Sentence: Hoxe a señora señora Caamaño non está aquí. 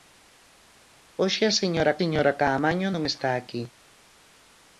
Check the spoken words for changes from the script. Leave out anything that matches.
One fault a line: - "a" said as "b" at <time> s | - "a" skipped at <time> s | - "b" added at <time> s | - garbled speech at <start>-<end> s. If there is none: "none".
none